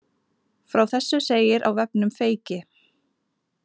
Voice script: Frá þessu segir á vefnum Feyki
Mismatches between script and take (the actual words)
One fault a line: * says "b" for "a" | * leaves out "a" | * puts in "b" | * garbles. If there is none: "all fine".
all fine